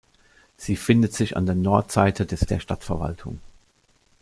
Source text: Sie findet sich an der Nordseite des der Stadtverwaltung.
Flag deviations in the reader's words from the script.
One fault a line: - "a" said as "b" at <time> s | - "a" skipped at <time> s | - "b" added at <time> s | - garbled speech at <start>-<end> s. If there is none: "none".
none